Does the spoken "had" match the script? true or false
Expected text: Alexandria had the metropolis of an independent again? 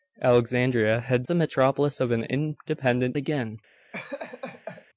true